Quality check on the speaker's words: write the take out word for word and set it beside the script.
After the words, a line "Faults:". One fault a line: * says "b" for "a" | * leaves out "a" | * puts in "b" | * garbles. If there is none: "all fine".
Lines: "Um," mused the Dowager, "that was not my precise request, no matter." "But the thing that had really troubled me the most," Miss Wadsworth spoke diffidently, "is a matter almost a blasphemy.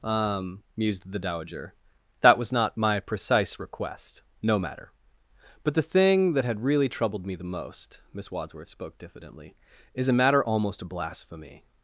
"Um," mused the Dowager, "that was not my precise request, no matter." "But the thing that had really troubled me the most," Miss Wadsworth spoke diffidently, "is a matter almost a blasphemy.
Faults:
all fine